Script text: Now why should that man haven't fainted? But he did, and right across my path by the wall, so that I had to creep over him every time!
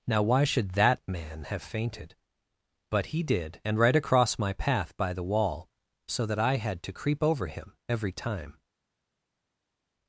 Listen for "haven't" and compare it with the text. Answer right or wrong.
wrong